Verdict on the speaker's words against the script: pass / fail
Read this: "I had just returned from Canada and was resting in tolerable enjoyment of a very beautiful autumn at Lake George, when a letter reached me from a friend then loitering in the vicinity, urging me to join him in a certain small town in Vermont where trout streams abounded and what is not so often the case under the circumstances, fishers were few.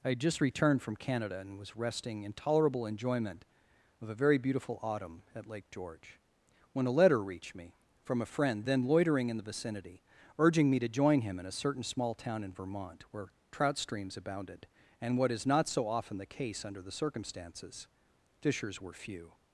pass